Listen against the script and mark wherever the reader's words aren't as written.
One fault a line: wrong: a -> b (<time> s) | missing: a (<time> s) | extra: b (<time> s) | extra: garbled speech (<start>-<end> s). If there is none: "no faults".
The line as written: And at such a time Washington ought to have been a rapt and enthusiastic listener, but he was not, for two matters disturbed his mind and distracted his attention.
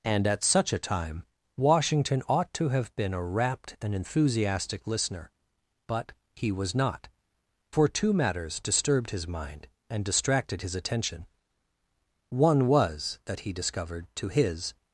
extra: One was that he discovered to his (12.3 s)